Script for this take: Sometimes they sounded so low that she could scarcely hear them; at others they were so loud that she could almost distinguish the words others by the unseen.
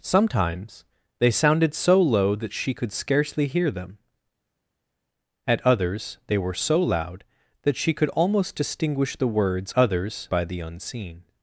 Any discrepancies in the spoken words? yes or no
no